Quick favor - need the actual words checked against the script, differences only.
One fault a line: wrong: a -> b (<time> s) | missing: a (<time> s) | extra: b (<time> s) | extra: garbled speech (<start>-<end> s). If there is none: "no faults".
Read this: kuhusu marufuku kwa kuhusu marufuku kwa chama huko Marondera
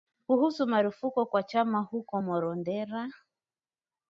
missing: kuhusu marufuku kwa (1.4 s)